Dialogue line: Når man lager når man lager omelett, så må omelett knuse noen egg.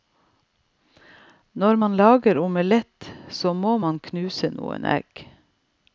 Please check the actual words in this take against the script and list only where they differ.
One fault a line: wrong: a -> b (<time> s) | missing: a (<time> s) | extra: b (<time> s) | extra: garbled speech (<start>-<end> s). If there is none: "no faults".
missing: når man lager (2.4 s)
wrong: omelett -> man (3.8 s)